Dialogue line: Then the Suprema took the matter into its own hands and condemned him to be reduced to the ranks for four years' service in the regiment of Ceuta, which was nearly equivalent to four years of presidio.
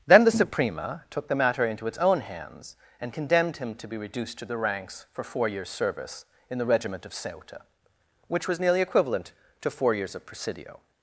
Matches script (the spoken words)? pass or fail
pass